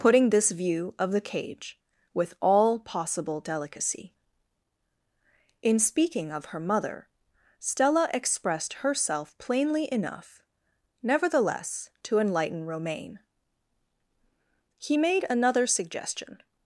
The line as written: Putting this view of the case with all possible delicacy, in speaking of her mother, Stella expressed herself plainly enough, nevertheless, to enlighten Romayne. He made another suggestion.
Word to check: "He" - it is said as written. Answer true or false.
true